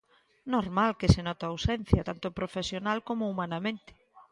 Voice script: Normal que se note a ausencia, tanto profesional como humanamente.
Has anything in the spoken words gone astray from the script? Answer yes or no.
no